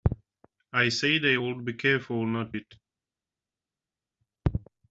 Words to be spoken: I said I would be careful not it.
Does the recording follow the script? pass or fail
pass